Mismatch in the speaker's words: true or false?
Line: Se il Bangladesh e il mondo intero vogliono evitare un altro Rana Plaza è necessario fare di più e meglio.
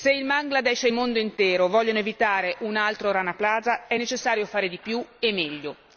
false